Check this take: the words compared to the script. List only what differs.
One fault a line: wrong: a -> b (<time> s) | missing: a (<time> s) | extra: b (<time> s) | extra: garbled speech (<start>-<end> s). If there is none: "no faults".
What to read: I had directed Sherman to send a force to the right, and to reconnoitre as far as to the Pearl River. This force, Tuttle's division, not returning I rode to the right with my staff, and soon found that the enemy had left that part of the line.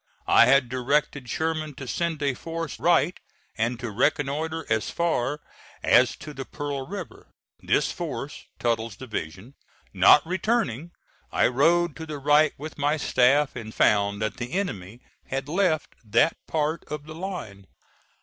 missing: to the (2.8 s)
missing: soon (13.7 s)